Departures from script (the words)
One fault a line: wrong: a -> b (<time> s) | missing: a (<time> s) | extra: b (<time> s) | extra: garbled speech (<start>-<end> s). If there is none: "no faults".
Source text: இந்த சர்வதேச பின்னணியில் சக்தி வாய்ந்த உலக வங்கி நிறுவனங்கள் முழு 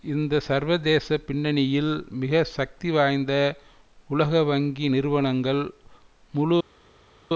extra: மிக (2.1 s)